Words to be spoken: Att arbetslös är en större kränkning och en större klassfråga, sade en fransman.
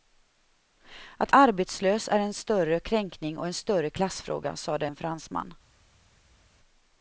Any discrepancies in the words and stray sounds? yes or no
no